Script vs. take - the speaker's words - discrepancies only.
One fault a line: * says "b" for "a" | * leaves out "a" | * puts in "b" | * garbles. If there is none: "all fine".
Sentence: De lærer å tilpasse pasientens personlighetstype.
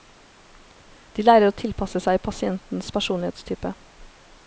* puts in "seg"